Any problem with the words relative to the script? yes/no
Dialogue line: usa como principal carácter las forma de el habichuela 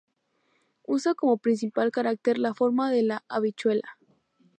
yes